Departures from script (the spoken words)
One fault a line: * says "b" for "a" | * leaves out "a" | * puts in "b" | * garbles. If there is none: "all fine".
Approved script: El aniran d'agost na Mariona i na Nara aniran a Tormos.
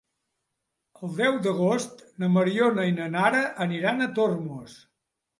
* says "deu" for "aniran"